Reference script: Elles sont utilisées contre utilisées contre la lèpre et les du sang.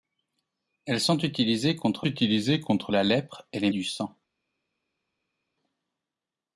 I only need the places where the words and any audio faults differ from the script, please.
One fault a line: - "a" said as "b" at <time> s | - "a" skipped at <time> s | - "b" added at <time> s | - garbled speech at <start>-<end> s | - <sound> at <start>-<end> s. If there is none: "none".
none